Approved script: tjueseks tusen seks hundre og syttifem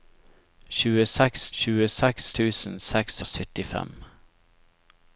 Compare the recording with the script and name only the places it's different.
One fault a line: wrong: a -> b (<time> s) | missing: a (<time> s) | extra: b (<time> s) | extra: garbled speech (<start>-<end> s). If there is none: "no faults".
extra: tjueseks (1.6 s)
missing: hundre (3.2 s)